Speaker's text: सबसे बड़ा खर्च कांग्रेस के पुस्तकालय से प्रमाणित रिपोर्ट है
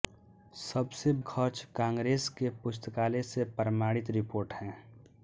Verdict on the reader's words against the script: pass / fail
fail